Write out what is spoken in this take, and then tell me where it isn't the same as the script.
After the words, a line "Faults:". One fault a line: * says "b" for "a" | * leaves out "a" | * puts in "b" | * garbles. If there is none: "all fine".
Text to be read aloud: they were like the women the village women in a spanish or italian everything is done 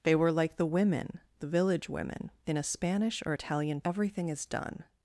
they were like the women the village women in a spanish or italian everything is done
Faults:
all fine